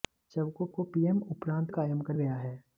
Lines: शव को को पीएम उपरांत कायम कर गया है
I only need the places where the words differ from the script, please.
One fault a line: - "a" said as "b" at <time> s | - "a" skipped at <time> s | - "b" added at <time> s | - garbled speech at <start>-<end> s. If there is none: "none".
none